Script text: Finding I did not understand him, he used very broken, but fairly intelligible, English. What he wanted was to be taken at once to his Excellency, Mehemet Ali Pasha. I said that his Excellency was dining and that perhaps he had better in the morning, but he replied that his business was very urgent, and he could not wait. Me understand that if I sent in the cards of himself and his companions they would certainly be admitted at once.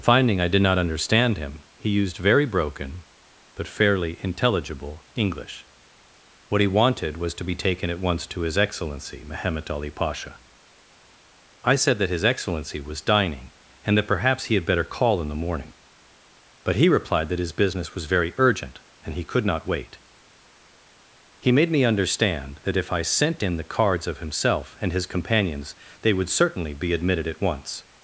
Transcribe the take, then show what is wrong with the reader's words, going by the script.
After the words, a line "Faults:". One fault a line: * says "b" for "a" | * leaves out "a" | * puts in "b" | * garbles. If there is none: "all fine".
Finding I did not understand him, he used very broken, but fairly intelligible, English. What he wanted was to be taken at once to his Excellency, Mehemet Ali Pasha. I said that his Excellency was dining and that perhaps he had better call in the morning, but he replied that his business was very urgent, and he could not wait. He made me understand that if I sent in the cards of himself and his companions they would certainly be admitted at once.
Faults:
* puts in "call"
* puts in "He made"